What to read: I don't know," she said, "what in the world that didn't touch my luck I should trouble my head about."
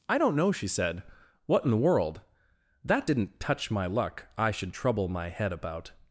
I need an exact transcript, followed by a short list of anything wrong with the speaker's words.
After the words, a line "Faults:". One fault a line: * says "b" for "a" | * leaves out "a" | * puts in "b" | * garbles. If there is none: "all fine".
I don't know," she said, "what in the world that didn't touch my luck I should trouble my head about."
Faults:
all fine